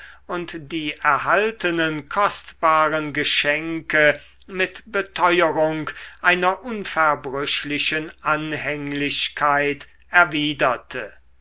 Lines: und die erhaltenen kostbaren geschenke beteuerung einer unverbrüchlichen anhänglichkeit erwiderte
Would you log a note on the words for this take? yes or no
yes